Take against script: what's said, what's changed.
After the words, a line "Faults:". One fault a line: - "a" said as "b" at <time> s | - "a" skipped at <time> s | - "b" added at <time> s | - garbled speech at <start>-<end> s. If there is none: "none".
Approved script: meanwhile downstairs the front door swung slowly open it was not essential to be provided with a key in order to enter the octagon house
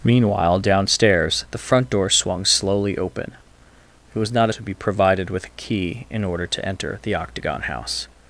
meanwhile downstairs the front door swung slowly open it was not to be provided with a key in order to enter the octagon house
Faults:
- "essential" skipped at 4.5 s